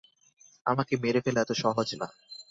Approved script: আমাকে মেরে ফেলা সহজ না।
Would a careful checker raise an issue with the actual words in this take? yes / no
yes